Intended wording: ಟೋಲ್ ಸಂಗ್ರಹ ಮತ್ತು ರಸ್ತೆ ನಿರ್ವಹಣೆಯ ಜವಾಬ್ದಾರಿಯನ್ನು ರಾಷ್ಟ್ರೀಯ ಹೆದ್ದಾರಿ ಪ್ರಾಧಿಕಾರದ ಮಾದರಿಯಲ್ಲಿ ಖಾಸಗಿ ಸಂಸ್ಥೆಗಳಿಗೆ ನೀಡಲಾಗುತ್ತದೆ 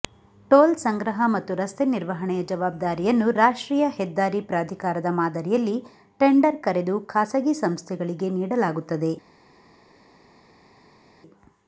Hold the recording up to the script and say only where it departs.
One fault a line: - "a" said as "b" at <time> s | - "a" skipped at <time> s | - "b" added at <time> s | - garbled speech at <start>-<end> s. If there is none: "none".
- "ಟೆಂಡರ್ ಕರೆದು" added at 6.2 s